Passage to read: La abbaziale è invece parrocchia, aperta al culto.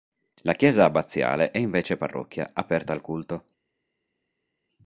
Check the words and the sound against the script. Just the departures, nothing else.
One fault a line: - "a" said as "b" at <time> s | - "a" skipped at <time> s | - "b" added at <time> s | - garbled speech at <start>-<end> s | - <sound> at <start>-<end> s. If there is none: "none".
- "chiesa" added at 0.5 s